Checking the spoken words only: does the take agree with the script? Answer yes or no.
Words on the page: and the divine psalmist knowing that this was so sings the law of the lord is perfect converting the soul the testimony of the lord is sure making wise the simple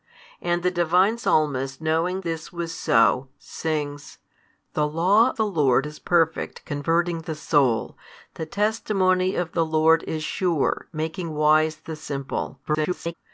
no